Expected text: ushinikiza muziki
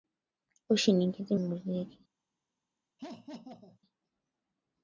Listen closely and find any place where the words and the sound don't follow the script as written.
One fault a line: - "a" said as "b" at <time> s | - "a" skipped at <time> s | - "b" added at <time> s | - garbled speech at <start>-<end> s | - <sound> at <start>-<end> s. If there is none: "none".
- laugh at 3.0-3.8 s